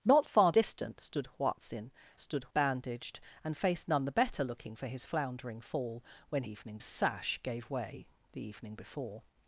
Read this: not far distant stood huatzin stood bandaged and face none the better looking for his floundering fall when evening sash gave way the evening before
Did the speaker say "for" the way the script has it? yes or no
yes